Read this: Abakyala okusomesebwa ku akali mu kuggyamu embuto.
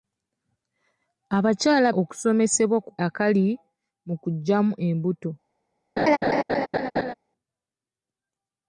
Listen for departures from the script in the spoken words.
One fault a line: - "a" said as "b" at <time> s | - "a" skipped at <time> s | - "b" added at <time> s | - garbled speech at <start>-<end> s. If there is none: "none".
none